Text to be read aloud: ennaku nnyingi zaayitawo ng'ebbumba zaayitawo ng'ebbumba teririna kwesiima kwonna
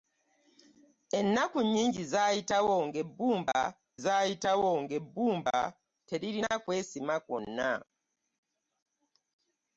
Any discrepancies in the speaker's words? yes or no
no